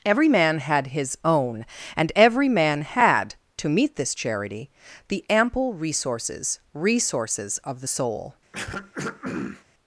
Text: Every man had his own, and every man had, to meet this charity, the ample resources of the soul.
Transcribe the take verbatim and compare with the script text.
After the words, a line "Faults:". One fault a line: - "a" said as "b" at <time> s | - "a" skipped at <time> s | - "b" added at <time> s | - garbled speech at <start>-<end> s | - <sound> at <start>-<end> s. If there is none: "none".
Every man had his own, and every man had, to meet this charity, the ample resources resources of the soul.
Faults:
- "resources" added at 6.7 s
- throat clearing at 8.5-9.6 s